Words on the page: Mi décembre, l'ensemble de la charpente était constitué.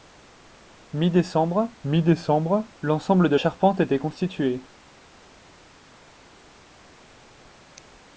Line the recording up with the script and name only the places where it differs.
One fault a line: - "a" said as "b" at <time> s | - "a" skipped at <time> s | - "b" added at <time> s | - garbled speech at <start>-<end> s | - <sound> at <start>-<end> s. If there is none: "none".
- "mi décembre" added at 1.8 s
- "la" skipped at 3.4 s